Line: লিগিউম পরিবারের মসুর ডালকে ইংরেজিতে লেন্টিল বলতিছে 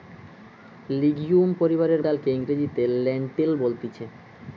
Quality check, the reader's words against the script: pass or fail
fail